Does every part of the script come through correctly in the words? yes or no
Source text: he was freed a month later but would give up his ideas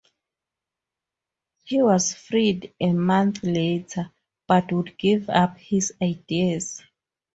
yes